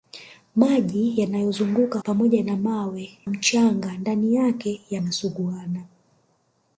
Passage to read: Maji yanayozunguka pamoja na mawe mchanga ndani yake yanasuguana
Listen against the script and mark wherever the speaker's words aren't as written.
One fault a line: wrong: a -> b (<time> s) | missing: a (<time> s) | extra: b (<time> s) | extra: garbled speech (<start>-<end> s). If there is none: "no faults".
no faults